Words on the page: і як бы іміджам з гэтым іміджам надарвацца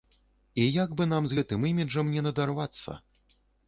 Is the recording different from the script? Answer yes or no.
yes